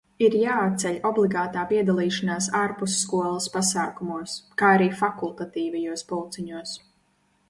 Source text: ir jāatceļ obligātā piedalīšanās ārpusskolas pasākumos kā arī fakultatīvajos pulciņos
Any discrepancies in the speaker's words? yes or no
no